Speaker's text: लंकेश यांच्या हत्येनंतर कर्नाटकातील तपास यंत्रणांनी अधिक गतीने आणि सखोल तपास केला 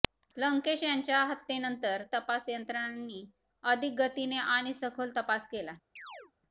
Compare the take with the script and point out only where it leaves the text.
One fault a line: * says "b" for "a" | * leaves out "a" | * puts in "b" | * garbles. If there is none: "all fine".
* leaves out "कर्नाटकातील"